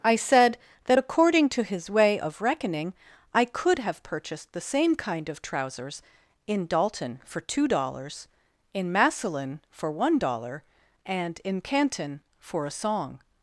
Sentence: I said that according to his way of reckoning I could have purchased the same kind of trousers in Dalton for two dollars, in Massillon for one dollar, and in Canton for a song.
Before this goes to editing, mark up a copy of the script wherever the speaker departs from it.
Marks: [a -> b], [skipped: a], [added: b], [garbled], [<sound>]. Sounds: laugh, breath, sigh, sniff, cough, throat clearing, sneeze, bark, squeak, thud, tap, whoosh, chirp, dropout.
I said that according to his way of reckoning I could have purchased the same kind of trousers in Dalton for two dollars, in Massillon for one dollar, and in Canton for a song.